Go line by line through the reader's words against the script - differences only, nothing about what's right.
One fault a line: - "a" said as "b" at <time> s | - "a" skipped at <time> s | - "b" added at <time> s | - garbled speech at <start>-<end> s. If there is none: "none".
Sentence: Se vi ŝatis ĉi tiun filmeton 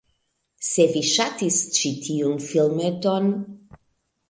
none